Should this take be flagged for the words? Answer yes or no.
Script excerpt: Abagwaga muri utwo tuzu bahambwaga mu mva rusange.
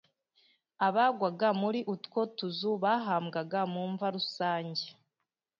no